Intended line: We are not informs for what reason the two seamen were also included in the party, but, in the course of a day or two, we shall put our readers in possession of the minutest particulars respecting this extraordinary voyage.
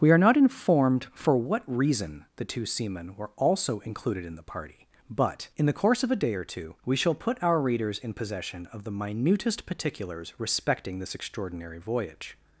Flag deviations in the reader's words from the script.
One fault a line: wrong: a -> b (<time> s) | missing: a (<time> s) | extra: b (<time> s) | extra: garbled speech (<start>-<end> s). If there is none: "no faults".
wrong: informs -> informed (0.3 s)